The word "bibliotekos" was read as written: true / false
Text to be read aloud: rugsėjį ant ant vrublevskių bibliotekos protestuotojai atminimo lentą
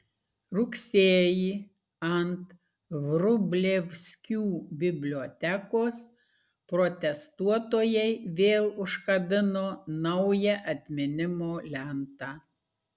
true